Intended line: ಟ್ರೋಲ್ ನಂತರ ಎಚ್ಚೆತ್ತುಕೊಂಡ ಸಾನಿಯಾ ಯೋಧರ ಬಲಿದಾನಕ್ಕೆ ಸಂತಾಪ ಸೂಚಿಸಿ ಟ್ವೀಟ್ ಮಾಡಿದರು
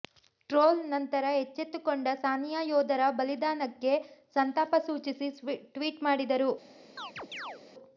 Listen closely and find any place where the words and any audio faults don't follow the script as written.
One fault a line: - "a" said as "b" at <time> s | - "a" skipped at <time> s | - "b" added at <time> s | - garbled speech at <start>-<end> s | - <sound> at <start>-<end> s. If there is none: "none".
- chirp at 7.0-7.6 s